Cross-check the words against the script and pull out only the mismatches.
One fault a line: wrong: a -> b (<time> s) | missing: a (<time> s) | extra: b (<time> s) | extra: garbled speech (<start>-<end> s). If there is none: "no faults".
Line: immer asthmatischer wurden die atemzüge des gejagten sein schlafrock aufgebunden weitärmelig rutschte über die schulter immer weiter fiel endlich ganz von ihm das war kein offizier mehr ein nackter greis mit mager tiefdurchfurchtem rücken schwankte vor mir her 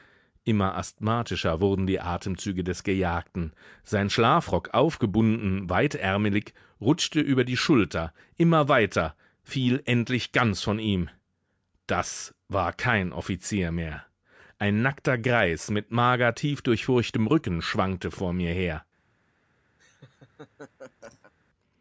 no faults